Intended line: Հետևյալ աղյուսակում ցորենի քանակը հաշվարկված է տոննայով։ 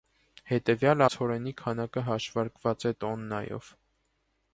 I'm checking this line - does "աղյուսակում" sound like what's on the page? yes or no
no